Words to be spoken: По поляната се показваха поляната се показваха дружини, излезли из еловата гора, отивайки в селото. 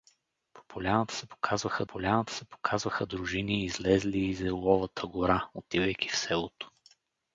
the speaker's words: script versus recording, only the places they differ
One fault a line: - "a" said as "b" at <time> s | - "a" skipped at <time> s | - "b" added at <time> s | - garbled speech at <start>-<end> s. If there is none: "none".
none